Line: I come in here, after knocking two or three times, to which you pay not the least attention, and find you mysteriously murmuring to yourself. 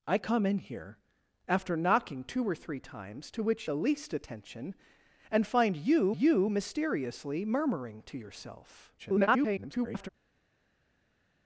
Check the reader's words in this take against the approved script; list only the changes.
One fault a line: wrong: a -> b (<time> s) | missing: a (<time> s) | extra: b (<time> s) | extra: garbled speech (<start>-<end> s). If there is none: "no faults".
missing: you pay not (3.7 s)
extra: you (6.1 s)
extra: garbled speech (9.0-10.1 s)